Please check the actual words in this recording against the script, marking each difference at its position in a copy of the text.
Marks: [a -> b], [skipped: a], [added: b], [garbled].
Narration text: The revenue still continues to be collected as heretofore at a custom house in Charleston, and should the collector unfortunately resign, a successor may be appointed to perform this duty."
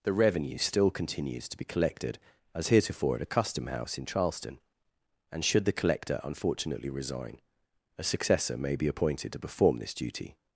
The revenue still continues to be collected as heretofore at a custom house in Charleston, and should the collector unfortunately resign, a successor may be appointed to perform this duty."